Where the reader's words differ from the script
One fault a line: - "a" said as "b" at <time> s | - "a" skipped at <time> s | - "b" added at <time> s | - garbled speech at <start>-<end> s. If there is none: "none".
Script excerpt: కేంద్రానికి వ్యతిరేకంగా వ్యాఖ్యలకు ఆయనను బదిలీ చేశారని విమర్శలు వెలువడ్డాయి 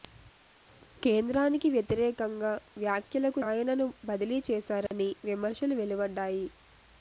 none